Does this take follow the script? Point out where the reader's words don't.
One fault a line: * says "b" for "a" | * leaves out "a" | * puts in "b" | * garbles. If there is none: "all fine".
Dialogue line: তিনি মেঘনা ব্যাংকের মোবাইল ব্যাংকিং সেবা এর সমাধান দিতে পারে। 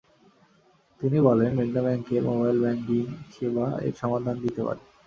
* puts in "বলেন"